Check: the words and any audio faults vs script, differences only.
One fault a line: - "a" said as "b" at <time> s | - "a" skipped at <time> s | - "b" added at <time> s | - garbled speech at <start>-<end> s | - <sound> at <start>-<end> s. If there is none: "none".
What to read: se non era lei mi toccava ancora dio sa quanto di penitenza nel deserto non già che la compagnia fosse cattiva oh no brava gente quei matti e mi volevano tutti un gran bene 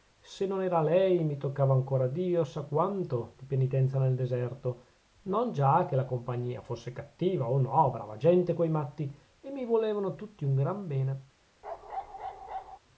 - bark at 11.6-12.8 s